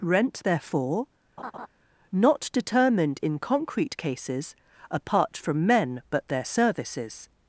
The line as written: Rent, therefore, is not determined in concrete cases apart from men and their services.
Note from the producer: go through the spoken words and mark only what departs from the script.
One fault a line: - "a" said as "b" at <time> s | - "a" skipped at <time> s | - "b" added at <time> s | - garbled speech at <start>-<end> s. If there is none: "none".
- "is" skipped at 1.1 s
- "and" said as "but" at 6.1 s